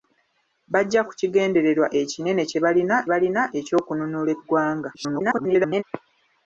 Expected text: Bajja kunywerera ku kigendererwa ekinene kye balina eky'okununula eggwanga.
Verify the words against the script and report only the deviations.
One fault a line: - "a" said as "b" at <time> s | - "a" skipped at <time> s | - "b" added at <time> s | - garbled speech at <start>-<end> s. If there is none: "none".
- "kunywerera" skipped at 1.0 s
- "balina" added at 3.1 s
- garbled speech at 4.9-5.8 s